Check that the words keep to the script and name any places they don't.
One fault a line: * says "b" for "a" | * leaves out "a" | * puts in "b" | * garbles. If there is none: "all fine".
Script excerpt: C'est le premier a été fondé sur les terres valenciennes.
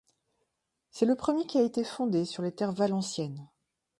* puts in "qui"